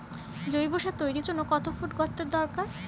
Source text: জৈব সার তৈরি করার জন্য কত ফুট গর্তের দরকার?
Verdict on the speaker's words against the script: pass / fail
fail